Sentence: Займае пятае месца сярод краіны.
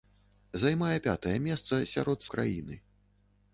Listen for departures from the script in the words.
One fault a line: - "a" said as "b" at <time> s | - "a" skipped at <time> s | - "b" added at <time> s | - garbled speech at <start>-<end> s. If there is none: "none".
none